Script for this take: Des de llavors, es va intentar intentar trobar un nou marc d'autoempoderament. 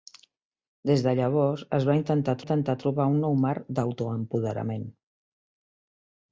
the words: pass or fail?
pass